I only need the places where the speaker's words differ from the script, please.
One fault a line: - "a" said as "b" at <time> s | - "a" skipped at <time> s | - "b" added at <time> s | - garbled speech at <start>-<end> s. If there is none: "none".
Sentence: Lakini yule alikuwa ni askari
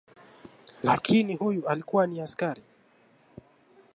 - "yule" said as "huyu" at 1.3 s